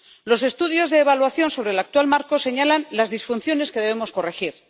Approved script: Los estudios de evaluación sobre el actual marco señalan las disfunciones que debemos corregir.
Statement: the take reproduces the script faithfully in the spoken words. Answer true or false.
true